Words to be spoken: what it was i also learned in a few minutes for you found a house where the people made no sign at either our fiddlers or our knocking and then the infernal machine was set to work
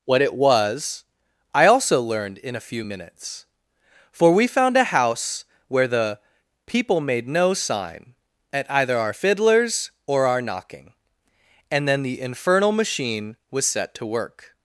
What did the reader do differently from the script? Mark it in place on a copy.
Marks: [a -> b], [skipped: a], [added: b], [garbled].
what it was i also learned in a few minutes for [you -> we] found a house where the people made no sign at either our fiddlers or our knocking and then the infernal machine was set to work